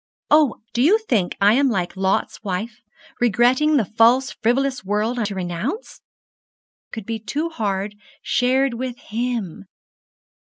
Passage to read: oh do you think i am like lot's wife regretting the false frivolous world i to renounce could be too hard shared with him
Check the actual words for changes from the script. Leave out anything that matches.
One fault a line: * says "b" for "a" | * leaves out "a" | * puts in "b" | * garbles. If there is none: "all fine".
all fine